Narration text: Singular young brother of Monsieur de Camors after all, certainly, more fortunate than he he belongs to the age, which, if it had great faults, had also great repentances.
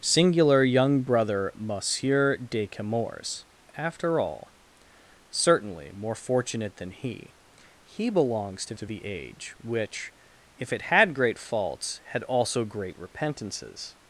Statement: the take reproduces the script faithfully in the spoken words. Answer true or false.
false